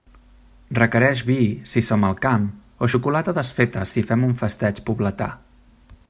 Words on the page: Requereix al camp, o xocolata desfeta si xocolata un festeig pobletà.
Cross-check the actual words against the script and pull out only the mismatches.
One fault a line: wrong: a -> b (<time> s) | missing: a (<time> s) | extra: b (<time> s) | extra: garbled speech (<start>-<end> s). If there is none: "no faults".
extra: vi si som (1.3 s)
wrong: xocolata -> fem (4.1 s)